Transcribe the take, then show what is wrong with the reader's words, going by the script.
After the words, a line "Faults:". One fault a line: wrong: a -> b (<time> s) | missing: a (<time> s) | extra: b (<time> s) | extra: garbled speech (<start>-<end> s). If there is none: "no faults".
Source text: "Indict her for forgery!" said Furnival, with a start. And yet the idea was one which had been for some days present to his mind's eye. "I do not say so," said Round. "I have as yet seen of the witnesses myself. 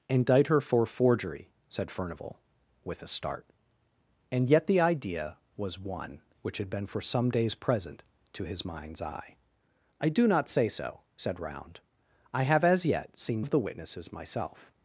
"Indict her for forgery!" said Furnival, with a start. And yet the idea was one which had been for some days present to his mind's eye. "I do not say so," said Round. "I have as yet seen of the witnesses myself.
Faults:
no faults